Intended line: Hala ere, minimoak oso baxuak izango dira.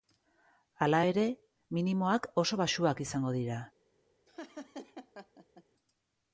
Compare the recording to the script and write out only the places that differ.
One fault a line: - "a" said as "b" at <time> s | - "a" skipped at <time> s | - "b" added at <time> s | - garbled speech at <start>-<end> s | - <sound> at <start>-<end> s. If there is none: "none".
- laugh at 4.3-5.6 s